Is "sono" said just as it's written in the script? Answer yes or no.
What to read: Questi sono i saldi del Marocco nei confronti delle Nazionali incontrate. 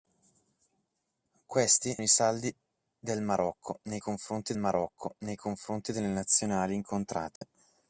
no